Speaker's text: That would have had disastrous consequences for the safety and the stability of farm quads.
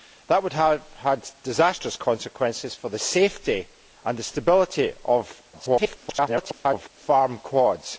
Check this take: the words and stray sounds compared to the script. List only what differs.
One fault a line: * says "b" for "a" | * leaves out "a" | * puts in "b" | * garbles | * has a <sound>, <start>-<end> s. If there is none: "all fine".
* garbles